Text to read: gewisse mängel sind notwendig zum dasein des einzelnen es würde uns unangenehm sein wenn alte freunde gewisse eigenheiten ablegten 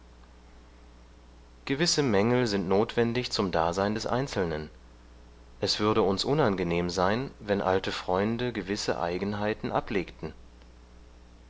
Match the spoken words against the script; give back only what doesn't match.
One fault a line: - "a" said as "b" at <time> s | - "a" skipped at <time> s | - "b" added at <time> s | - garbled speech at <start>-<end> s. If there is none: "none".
none